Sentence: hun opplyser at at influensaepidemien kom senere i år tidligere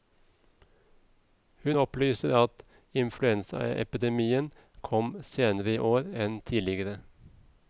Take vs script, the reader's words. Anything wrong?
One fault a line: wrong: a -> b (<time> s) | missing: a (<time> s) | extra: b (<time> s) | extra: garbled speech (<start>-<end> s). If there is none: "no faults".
missing: at (2.6 s)
extra: enn (6.3 s)